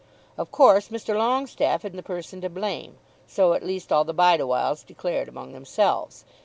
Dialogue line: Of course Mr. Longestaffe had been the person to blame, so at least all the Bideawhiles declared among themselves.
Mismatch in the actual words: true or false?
true